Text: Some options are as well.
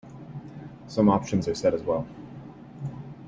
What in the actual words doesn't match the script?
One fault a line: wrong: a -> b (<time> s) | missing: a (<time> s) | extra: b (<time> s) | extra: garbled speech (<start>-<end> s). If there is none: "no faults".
extra: set (1.5 s)